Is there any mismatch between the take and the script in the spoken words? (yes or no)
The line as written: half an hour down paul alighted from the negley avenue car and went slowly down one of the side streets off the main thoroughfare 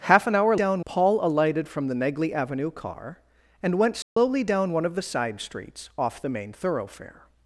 no